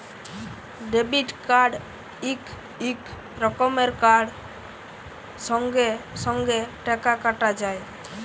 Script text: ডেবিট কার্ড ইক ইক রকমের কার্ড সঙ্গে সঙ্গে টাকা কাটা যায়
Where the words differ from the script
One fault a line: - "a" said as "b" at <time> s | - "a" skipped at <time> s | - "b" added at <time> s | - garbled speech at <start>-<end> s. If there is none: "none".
none